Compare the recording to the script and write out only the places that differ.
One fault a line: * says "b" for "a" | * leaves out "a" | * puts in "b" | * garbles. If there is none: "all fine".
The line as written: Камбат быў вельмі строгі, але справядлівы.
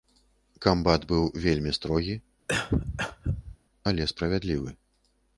all fine